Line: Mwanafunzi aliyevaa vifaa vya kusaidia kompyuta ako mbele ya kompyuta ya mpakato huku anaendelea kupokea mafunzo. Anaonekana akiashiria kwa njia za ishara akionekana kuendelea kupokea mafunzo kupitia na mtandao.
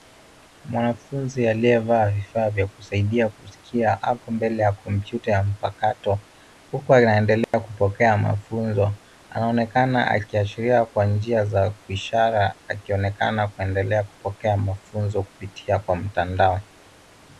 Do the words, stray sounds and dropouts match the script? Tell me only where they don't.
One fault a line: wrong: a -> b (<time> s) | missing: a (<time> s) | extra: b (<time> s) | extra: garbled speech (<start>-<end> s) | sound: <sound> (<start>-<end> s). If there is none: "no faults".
wrong: kompyuta -> kusikia (3.3 s)
sound: dropout (7.4-7.5 s)
wrong: na -> kwa (15.8 s)